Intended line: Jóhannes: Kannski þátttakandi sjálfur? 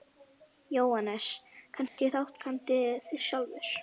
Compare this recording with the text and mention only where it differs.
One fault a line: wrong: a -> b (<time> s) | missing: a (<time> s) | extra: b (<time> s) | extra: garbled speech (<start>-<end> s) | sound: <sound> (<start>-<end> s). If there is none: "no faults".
sound: dropout (1.9-2.0 s)